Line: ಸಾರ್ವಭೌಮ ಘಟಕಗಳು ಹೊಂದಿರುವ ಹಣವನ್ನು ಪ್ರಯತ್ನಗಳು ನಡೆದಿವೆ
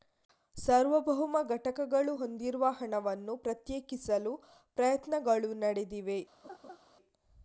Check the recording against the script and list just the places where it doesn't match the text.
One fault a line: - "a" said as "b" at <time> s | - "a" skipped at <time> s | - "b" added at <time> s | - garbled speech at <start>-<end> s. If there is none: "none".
- "ಪ್ರತ್ಯೇಕಿಸಲು" added at 3.4 s